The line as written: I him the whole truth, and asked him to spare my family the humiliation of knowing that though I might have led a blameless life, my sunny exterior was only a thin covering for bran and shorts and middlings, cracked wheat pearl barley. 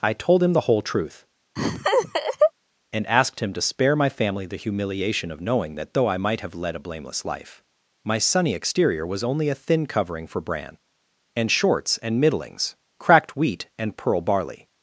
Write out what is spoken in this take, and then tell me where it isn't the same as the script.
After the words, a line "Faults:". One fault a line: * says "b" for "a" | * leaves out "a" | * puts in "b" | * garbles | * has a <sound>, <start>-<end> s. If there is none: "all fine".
I told him the whole truth, and asked him to spare my family the humiliation of knowing that though I might have led a blameless life, my sunny exterior was only a thin covering for bran and shorts and middlings, cracked wheat and pearl barley.
Faults:
* puts in "told"
* has a laugh, 1.6-2.5 s
* puts in "and"